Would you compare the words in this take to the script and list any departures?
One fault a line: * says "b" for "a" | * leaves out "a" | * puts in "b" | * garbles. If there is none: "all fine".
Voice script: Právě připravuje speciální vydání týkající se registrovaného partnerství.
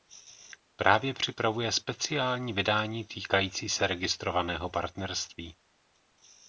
all fine